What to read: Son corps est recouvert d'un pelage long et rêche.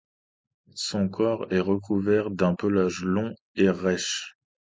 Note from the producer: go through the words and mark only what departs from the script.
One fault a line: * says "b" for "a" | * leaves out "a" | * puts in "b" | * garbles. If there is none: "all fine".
all fine